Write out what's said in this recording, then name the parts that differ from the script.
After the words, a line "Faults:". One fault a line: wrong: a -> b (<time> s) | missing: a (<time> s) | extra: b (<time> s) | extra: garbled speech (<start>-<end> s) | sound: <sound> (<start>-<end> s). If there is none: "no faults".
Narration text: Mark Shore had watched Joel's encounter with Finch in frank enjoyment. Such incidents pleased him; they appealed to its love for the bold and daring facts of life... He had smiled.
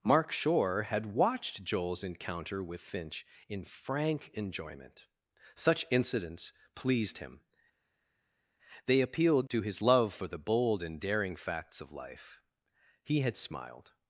Mark Shore had watched Joel's encounter with Finch in frank enjoyment. Such incidents pleased him; they appealed to his love for the bold and daring facts of life... He had smiled.
Faults:
wrong: its -> his (9.6 s)